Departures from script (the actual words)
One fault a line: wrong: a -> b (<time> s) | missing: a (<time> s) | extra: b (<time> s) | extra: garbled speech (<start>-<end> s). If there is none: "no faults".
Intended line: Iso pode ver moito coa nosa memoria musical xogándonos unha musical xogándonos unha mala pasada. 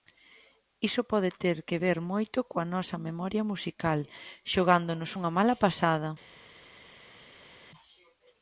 extra: ter que (1.4 s)
missing: musical xogándonos unha (5.3 s)